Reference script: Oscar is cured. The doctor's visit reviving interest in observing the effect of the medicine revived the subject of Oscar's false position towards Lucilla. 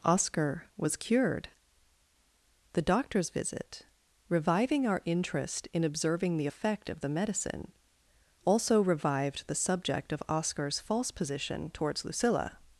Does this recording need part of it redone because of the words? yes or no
yes